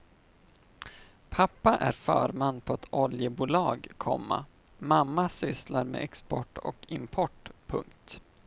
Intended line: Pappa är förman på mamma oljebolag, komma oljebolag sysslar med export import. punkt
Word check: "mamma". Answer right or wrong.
wrong